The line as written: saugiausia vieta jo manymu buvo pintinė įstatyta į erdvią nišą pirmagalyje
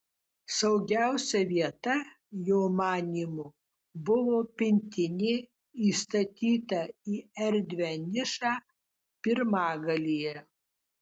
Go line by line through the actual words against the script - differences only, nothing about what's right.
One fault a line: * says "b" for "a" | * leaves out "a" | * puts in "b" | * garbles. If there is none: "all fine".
all fine